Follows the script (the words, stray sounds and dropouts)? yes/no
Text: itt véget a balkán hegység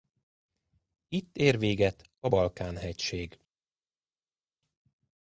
no